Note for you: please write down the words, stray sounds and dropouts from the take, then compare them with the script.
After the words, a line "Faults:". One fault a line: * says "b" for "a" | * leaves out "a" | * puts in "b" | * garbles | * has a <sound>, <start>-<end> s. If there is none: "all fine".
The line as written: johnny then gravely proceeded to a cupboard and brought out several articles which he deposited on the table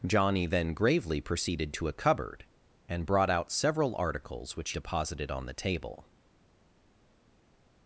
johnny then gravely proceeded to a cupboard and brought out several articles which deposited on the table
Faults:
* leaves out "he"